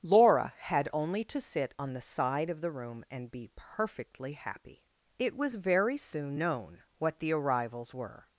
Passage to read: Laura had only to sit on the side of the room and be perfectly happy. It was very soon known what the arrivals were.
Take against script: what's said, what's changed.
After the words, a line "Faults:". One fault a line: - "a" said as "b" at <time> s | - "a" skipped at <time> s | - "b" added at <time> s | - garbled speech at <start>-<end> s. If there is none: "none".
Laura had only to sit on the side of the room and be perfectly happy. It was very soon known what the arrivals were.
Faults:
none